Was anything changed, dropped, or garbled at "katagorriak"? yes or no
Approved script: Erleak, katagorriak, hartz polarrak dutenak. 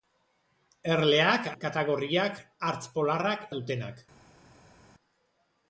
no